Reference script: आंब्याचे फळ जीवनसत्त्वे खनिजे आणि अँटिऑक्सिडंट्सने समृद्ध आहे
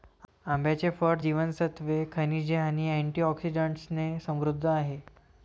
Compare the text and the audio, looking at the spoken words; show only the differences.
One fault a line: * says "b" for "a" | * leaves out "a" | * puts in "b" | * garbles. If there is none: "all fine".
all fine